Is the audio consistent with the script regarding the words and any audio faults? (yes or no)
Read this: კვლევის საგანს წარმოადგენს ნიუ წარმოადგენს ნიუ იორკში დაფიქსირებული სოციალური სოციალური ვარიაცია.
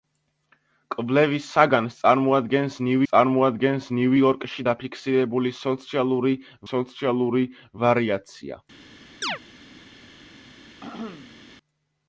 no